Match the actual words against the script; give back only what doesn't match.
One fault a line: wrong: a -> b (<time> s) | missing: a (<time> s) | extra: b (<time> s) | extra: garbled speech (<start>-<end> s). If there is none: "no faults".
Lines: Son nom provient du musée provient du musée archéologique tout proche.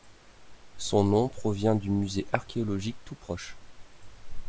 missing: provient du musée (2.2 s)